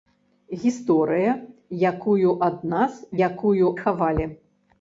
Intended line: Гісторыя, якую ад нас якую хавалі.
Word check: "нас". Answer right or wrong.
right